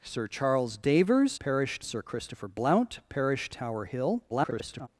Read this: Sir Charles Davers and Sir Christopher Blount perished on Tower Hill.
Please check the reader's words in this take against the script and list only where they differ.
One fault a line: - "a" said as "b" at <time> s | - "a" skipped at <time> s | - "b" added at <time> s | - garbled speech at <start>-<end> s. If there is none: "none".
- "and" said as "perished" at 1.4 s
- "on" skipped at 3.5 s
- garbled speech at 4.3-4.9 s